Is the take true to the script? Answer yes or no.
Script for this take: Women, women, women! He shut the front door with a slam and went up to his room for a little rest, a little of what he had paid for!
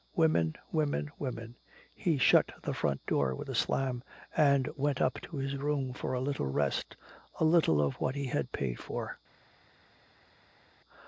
yes